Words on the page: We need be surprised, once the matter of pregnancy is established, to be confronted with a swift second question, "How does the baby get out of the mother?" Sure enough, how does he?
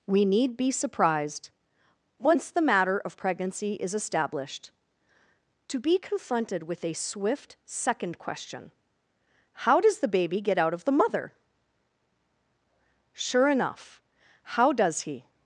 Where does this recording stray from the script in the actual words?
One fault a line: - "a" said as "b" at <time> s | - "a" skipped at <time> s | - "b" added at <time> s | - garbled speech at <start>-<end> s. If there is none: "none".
none